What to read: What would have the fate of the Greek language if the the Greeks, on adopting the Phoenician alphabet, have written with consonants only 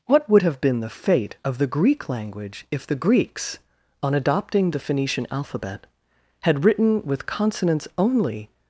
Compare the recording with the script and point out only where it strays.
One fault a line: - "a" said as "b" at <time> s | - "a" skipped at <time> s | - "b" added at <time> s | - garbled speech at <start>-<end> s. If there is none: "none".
- "been" added at 0.6 s
- "the" skipped at 3.0 s
- "have" said as "had" at 6.4 s